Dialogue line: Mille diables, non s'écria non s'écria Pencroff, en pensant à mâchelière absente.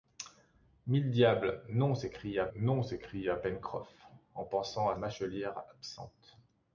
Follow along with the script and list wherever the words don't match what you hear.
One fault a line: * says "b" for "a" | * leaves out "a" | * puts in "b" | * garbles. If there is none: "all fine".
all fine